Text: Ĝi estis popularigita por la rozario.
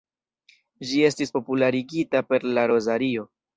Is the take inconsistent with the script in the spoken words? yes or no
yes